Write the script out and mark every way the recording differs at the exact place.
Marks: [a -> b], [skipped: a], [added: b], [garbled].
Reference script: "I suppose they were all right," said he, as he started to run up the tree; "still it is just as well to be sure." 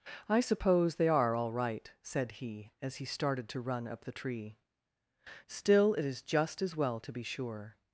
"I suppose they [were -> are] all right," said he, as he started to run up the tree; "still it is just as well to be sure."